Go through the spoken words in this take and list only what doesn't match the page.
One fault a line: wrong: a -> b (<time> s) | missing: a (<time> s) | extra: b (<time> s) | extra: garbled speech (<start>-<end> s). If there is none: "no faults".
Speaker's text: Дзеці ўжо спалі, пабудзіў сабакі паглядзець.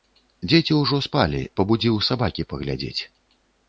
no faults